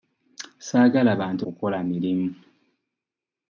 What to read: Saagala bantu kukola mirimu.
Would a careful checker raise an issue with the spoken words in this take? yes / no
no